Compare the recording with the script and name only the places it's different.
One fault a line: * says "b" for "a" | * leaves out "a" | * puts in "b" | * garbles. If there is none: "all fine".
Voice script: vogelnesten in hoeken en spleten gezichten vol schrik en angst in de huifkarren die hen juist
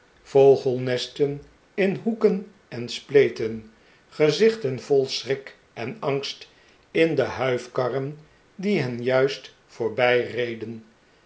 all fine